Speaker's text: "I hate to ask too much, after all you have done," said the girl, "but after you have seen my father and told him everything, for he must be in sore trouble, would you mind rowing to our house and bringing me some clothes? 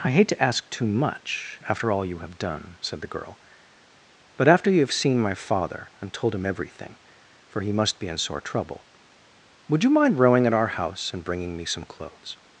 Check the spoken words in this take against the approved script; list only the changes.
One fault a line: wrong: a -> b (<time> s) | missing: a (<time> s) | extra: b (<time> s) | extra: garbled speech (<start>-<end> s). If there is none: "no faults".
wrong: to -> at (10.5 s)